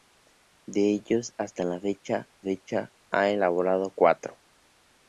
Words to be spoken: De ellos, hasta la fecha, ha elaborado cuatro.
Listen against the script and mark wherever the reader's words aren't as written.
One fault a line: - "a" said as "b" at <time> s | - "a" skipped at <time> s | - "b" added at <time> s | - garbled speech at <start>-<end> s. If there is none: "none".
- "fecha" added at 2.4 s